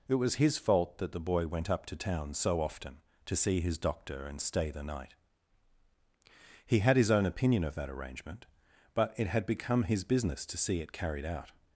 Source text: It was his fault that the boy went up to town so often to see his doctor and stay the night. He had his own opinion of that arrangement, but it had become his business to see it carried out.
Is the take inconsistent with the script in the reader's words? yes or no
no